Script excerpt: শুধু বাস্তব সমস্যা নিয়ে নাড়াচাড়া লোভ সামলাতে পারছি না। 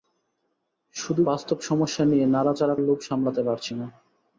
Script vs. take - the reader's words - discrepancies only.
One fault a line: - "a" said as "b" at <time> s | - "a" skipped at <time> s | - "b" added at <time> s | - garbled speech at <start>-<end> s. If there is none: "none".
none